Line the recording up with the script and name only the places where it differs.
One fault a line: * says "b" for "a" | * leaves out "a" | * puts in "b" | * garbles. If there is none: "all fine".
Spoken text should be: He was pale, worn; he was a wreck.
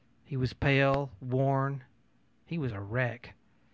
all fine